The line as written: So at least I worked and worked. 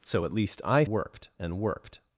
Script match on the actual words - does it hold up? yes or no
yes